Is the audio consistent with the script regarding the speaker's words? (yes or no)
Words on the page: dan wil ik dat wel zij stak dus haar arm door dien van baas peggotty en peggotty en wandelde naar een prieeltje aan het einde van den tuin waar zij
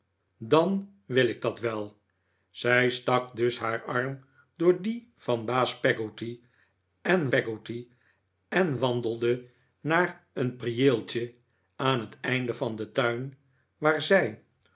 yes